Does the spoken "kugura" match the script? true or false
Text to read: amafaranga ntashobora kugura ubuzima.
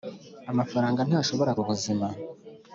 false